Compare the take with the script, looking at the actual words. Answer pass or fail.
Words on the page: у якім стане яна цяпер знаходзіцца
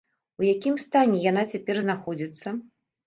pass